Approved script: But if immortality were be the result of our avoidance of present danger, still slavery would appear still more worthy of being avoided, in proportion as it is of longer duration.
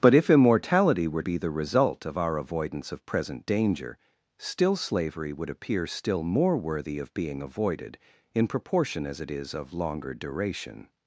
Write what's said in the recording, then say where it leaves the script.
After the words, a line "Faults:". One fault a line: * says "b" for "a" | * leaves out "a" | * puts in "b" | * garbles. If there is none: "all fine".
But if immortality were be the result of our avoidance of present danger, still slavery would appear still more worthy of being avoided, in proportion as it is of longer duration.
Faults:
all fine